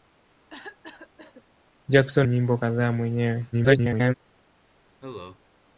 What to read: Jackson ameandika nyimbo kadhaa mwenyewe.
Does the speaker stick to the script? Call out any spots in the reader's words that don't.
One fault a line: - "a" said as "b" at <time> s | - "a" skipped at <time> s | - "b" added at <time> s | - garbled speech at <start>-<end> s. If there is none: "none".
- "ameandika" skipped at 2.3 s
- garbled speech at 3.5-4.1 s